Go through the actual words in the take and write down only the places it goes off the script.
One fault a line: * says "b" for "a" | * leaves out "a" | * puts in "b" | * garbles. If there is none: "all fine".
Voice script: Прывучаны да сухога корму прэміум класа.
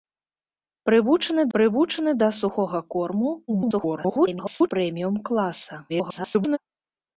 * puts in "прывучаны"
* garbles
* garbles